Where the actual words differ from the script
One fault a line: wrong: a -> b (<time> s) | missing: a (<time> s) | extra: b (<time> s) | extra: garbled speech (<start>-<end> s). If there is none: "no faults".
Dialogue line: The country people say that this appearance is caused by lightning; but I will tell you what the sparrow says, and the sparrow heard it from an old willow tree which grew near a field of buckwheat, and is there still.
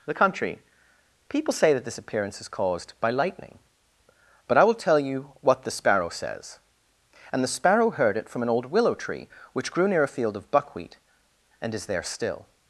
no faults